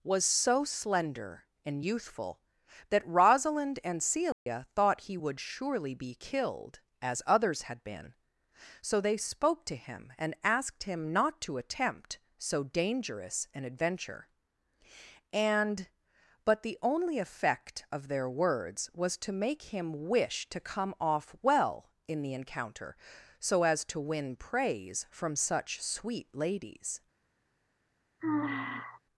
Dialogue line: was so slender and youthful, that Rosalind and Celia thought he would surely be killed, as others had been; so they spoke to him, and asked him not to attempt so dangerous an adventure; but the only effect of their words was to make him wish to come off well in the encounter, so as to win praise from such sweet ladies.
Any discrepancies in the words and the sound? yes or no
yes